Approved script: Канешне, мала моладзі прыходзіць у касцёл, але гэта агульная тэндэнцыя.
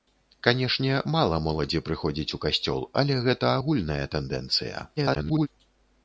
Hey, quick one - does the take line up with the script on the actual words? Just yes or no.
no